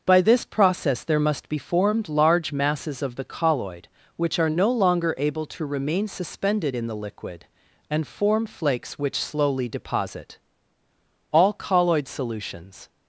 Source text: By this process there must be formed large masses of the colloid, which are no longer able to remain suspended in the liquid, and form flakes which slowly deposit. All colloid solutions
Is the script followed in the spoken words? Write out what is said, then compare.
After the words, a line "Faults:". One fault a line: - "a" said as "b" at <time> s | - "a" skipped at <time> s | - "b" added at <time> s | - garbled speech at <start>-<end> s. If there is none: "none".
By this process there must be formed large masses of the colloid, which are no longer able to remain suspended in the liquid, and form flakes which slowly deposit. All colloid solutions
Faults:
none